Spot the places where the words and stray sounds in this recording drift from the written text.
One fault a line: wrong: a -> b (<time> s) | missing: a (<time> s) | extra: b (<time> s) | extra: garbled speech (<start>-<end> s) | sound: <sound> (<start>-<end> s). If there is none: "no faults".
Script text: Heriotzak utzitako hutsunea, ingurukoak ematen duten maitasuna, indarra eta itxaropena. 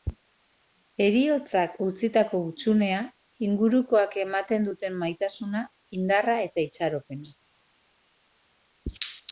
no faults